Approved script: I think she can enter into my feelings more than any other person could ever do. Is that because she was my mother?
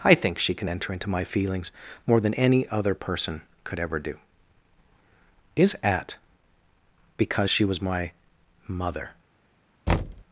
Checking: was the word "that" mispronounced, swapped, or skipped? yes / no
yes